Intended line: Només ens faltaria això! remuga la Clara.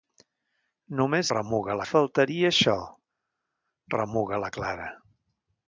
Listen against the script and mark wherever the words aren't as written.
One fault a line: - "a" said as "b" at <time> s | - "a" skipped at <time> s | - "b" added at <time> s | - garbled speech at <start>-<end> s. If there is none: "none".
- "ens" said as "remuga" at 1.3 s